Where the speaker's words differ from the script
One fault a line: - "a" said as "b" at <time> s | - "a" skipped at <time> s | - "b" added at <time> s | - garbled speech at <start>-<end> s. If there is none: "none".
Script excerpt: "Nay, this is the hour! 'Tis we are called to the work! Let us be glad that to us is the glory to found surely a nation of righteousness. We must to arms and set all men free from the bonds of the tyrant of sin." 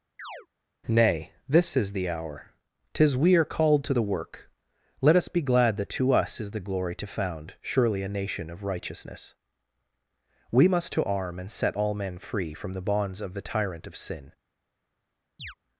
- "arms" said as "arm" at 11.0 s